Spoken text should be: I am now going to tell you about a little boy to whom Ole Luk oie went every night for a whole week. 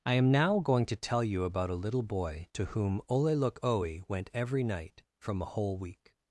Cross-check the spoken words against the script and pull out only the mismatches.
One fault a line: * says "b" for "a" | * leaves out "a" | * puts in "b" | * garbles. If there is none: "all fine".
* says "from" for "for"